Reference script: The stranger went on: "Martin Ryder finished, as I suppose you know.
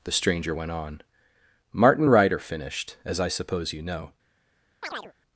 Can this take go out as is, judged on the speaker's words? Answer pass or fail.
pass